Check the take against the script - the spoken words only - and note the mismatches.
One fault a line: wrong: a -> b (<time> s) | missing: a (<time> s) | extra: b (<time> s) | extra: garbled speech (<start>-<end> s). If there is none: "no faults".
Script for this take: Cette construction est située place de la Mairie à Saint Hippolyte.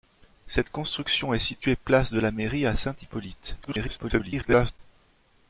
extra: garbled speech (3.6-4.8 s)